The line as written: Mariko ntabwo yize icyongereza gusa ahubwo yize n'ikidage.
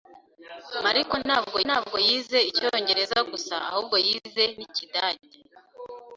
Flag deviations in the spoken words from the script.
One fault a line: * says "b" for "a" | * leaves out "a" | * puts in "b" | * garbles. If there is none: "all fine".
* puts in "ntabwo"